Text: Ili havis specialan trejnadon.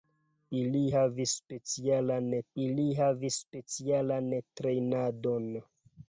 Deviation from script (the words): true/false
true